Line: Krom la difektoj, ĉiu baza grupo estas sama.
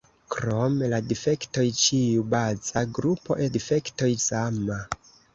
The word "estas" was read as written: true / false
false